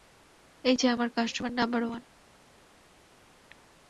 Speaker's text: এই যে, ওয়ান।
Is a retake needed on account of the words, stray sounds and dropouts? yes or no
yes